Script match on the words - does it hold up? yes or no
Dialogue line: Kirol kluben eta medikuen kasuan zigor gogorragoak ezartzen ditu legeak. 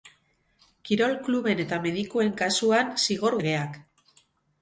no